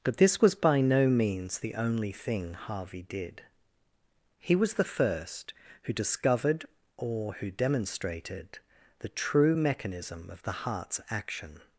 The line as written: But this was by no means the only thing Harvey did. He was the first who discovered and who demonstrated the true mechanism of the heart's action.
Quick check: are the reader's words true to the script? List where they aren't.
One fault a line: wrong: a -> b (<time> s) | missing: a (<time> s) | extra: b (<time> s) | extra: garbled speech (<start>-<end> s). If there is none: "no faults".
wrong: and -> or (7.0 s)